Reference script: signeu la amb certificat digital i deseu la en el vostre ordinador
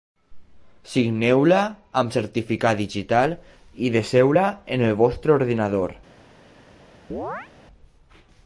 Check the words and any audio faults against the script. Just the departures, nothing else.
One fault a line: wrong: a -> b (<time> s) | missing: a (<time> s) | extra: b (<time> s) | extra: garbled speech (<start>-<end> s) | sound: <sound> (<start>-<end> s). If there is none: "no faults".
sound: chirp (7.1-7.5 s)